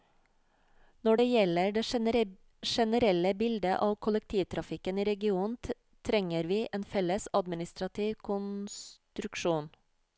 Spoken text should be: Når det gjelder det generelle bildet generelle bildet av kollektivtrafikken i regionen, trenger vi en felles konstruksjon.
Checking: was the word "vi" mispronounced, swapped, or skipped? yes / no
no